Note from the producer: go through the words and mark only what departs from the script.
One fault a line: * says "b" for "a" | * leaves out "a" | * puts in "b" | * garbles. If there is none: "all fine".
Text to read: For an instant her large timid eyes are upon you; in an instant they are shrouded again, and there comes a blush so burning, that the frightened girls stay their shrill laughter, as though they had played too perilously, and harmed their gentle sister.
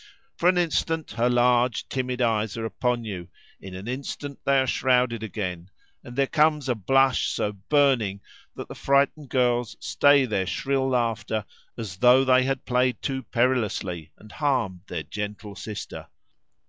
all fine